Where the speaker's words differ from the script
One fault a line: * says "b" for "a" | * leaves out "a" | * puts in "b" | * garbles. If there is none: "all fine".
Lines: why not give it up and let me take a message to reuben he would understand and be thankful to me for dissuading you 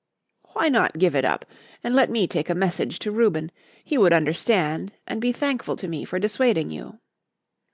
all fine